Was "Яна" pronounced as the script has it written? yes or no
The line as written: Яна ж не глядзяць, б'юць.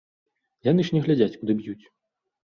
no